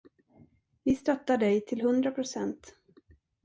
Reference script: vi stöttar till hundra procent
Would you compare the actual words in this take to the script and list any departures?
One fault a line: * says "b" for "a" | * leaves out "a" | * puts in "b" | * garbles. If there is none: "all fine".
* puts in "dig"